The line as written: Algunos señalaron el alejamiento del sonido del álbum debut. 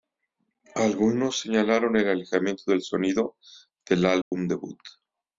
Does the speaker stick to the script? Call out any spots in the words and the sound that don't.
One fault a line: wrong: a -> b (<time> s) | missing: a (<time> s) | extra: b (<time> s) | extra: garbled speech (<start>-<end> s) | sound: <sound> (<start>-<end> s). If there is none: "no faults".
sound: dropout (4.2-4.3 s)